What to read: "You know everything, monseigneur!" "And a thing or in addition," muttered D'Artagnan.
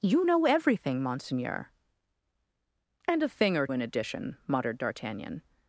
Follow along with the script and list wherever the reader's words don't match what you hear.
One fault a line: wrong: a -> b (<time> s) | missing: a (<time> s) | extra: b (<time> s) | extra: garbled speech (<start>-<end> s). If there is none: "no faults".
no faults